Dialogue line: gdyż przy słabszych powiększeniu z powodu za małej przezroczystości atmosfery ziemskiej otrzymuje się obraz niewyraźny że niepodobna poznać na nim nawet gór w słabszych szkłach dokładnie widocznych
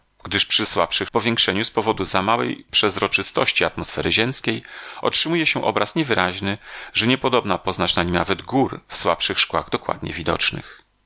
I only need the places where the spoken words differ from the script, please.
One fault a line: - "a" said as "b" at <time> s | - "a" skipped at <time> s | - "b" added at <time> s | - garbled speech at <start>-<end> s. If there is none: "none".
none